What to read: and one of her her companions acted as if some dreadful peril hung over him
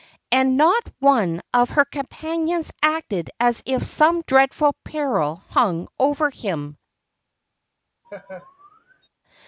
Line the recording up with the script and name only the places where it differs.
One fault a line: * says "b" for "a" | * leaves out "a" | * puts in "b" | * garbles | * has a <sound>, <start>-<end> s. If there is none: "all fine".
* puts in "not"
* leaves out "her"
* has a laugh, 8.0-9.1 s